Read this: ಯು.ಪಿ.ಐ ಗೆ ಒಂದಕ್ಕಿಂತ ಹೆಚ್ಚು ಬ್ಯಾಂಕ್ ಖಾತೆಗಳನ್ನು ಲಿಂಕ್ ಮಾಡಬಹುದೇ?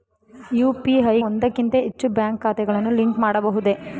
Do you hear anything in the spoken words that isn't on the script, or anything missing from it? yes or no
yes